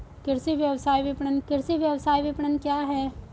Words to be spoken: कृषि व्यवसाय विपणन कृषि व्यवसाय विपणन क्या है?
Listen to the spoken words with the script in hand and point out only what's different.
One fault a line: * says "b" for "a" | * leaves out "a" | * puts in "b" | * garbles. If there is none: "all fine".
all fine